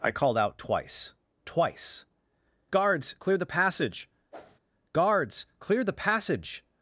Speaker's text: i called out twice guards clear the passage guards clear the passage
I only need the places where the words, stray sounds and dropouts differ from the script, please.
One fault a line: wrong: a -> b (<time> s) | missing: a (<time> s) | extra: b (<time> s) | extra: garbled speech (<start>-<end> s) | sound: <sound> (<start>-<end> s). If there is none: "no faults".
extra: twice (1.4 s)
sound: whoosh (4.3-4.6 s)